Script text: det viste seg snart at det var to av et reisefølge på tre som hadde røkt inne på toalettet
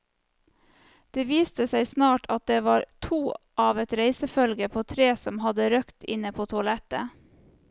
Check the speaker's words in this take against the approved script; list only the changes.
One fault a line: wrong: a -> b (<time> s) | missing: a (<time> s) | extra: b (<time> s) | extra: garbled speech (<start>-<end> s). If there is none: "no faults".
no faults